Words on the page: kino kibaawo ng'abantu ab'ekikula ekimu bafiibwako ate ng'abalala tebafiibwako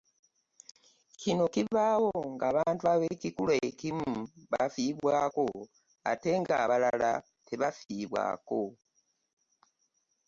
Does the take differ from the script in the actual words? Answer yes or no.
no